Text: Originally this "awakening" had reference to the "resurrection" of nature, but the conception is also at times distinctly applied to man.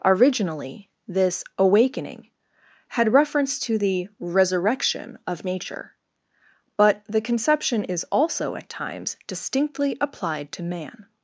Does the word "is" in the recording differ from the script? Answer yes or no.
no